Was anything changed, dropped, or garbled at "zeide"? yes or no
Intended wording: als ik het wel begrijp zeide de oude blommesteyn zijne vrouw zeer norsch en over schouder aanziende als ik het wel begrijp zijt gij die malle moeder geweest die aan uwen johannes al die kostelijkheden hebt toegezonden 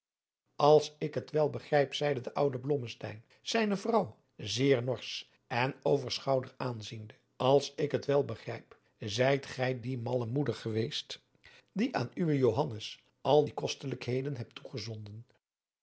no